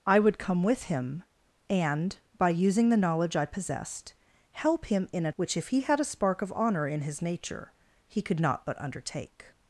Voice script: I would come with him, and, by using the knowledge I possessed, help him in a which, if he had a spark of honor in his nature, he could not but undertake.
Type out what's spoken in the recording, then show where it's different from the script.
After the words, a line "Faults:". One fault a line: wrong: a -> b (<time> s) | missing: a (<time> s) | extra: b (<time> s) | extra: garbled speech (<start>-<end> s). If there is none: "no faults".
I would come with him, and, by using the knowledge I possessed, help him in a which, if he had a spark of honor in his nature, he could not but undertake.
Faults:
no faults